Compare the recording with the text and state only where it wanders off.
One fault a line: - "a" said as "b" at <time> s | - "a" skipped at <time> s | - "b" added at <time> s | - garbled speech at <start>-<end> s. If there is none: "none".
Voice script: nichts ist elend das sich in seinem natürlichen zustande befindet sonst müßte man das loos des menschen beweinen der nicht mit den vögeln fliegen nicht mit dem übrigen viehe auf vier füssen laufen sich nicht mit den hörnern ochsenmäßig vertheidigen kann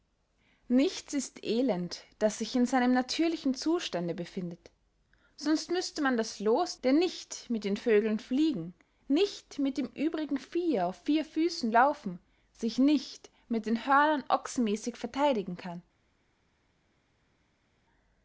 - "des menschen beweinen" skipped at 6.8 s